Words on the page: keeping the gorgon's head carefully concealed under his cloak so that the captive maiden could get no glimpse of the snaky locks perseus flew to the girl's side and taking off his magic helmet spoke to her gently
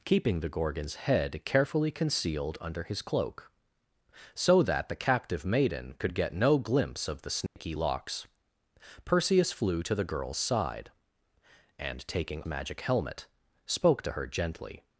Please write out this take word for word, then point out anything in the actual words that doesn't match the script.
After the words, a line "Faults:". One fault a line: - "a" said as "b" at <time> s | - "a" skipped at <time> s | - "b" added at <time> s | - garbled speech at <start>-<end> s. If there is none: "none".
keeping the gorgon's head carefully concealed under his cloak so that the captive maiden could get no glimpse of the snaky locks perseus flew to the girl's side and taking magic helmet spoke to her gently
Faults:
- "off his" skipped at 12.4 s